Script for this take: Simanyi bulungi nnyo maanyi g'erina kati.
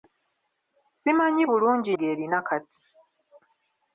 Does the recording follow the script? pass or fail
fail